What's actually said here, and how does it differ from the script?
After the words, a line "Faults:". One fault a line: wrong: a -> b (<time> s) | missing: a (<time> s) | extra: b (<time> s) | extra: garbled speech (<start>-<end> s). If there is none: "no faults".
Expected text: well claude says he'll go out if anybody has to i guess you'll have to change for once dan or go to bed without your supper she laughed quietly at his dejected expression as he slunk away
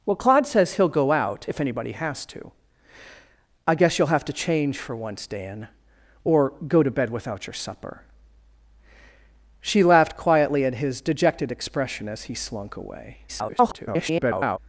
well claude says he'll go out if anybody has to i guess you'll have to change for once dan or go to bed without your supper she laughed quietly at his dejected expression as he slunk away [garbled]
Faults:
extra: garbled speech (13.3-14.6 s)